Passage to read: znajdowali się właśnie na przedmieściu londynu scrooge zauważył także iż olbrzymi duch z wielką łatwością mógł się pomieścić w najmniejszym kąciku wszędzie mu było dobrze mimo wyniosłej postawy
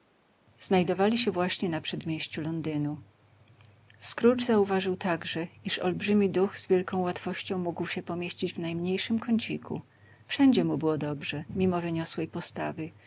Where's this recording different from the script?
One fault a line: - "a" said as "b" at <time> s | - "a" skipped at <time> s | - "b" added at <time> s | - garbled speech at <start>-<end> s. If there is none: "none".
none